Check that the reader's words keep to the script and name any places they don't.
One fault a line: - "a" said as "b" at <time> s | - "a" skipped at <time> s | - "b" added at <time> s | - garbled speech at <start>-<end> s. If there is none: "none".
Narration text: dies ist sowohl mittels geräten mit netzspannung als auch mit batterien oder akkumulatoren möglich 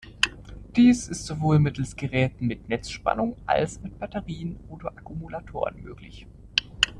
- "auch" skipped at 3.8 s